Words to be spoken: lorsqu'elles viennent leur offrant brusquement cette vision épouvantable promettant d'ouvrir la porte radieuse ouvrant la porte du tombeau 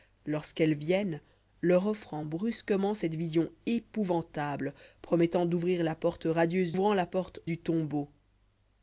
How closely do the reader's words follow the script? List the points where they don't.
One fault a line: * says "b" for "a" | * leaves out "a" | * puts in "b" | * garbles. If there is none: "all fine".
all fine